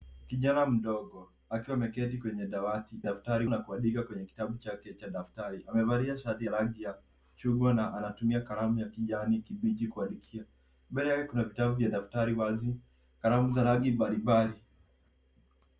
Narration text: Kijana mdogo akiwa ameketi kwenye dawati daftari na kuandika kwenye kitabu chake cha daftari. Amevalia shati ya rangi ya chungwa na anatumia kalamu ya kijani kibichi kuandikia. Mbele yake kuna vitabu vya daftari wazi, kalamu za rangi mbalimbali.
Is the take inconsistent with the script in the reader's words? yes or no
no